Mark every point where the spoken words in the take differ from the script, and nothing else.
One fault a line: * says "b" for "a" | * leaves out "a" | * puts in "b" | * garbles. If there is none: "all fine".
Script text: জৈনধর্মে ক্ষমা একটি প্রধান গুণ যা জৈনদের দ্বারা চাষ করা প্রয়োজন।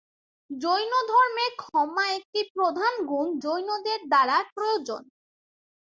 * leaves out "যা"
* leaves out "চাষ করা"